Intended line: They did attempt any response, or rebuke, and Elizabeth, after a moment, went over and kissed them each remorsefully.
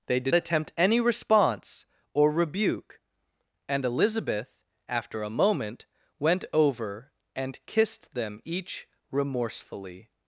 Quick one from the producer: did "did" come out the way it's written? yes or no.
yes